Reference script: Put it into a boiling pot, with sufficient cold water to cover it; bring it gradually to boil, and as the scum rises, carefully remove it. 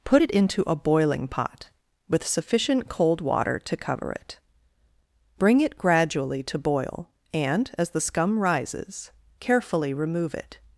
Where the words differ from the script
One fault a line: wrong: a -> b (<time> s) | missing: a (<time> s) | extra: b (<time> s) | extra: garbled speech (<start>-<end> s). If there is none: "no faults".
no faults